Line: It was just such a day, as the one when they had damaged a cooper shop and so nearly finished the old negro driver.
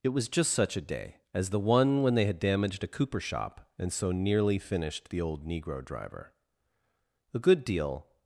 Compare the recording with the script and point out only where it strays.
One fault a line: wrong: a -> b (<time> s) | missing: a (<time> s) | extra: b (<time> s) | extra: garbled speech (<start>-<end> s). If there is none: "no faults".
extra: A good deal (7.3 s)